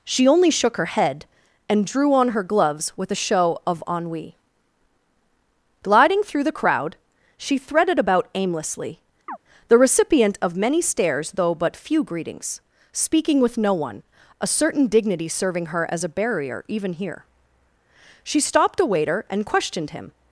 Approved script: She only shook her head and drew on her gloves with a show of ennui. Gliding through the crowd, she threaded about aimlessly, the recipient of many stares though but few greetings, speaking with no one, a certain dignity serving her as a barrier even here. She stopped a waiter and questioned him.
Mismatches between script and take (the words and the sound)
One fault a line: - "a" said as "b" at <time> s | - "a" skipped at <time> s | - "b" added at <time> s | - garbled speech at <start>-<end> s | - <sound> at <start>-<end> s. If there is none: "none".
- chirp at 9.3-9.4 s